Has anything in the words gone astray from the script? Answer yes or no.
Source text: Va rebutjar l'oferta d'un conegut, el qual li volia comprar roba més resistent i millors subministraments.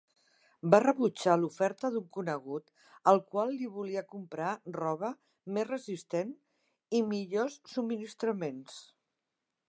no